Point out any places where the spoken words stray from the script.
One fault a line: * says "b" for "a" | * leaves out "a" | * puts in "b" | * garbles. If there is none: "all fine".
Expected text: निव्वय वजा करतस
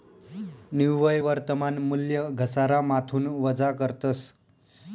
* puts in "वर्तमान मूल्य घसारामाथून"